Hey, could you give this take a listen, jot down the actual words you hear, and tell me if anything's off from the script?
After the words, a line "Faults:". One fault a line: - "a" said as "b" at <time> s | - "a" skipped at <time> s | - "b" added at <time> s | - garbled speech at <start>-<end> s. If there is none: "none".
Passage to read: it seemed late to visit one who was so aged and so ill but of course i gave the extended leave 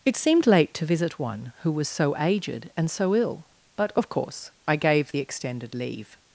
it seemed late to visit one who was so aged and so ill but of course i gave the extended leave
Faults:
none